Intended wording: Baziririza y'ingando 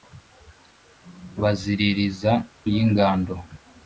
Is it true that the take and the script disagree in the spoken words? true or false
false